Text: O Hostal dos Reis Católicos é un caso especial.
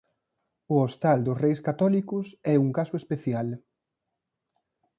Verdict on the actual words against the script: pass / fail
pass